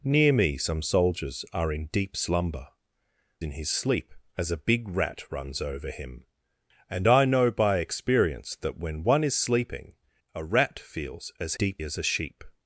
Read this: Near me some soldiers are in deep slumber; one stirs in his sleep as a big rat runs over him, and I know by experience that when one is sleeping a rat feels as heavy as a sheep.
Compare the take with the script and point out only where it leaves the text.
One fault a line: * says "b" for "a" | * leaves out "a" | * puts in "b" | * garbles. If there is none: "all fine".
* leaves out "one stirs"
* says "deep" for "heavy"